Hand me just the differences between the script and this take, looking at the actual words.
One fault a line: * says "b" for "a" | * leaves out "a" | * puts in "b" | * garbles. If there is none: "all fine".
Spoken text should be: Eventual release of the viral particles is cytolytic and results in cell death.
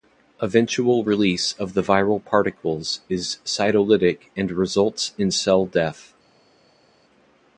all fine